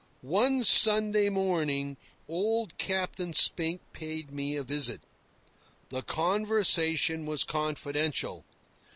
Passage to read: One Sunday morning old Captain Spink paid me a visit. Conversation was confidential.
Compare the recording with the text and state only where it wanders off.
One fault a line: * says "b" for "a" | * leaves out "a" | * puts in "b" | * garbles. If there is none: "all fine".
* puts in "The"